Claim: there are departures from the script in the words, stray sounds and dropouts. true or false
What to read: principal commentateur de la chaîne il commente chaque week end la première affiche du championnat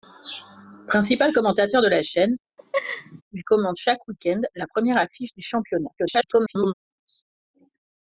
true